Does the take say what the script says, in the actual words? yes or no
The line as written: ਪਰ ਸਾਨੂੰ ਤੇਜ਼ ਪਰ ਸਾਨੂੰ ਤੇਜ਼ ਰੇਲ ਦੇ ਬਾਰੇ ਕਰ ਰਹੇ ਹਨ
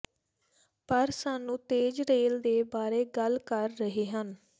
no